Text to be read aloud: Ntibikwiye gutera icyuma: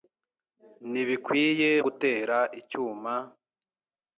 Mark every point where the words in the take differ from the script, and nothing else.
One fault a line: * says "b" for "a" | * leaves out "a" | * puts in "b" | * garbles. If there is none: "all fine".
all fine